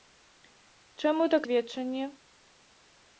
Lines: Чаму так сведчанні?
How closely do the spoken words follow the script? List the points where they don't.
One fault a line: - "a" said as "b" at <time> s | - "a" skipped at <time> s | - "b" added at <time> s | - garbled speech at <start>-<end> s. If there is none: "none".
none